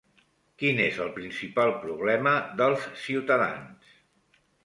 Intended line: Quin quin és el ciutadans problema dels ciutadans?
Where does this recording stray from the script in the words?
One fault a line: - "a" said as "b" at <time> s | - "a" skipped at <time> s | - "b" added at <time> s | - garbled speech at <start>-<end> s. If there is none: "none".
- "quin" skipped at 0.8 s
- "ciutadans" said as "principal" at 1.2 s